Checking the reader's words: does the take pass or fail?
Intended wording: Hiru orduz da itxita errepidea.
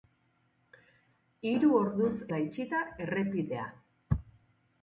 pass